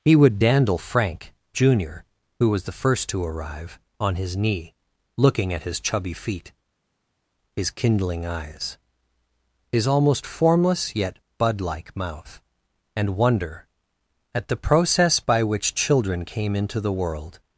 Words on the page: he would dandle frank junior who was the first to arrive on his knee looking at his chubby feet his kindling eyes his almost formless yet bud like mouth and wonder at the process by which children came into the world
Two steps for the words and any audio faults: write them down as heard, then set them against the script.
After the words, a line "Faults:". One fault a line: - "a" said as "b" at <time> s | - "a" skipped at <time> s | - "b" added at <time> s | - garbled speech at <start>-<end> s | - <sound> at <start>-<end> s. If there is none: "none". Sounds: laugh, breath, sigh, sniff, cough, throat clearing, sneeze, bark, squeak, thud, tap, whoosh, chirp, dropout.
he would dandle frank junior who was the first to arrive on his knee looking at his chubby feet his kindling eyes his almost formless yet bud like mouth and wonder at the process by which children came into the world
Faults:
none